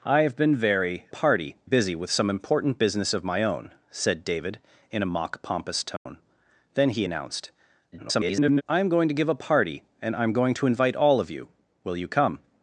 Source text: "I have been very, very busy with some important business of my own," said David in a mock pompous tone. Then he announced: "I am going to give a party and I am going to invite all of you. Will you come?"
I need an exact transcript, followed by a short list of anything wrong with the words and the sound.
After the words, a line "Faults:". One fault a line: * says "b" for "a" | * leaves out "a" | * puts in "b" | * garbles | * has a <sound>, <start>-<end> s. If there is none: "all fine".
"I have been very, party busy with some important business of my own," said David in a mock pompous tone. Then he announced: [garbled] "I am going to give a party and I am going to invite all of you. Will you come?"
Faults:
* says "party" for "very"
* has a dropout, 6.0-6.1 s
* garbles